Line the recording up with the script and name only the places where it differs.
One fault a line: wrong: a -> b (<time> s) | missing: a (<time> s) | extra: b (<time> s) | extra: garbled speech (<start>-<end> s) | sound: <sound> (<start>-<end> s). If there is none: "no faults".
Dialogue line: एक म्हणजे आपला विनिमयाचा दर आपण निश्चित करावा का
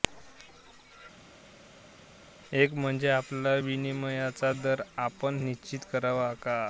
no faults